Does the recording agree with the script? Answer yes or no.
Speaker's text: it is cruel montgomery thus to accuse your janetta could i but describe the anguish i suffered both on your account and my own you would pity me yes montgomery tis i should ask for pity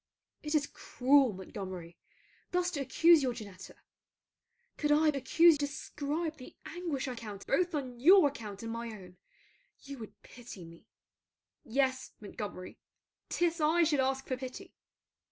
no